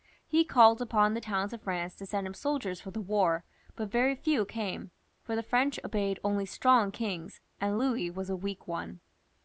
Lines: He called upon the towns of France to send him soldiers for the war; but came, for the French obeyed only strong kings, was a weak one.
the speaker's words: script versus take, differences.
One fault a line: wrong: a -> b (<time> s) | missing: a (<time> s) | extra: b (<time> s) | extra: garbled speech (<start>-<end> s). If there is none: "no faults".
extra: very few (3.9 s)
extra: and Louis (7.6 s)